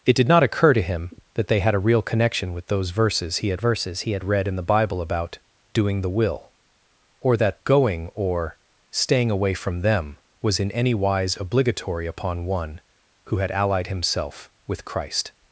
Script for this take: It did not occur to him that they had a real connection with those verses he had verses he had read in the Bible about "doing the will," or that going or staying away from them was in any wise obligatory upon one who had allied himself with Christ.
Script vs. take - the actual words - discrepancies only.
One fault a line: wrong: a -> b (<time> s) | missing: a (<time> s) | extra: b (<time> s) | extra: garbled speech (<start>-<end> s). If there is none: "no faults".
no faults